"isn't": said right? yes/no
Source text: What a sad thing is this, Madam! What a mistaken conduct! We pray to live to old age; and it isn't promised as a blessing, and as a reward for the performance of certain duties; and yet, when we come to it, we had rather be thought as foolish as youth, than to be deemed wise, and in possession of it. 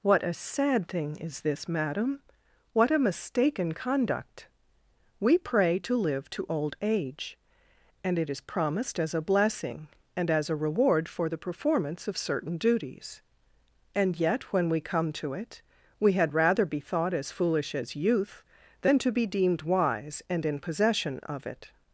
no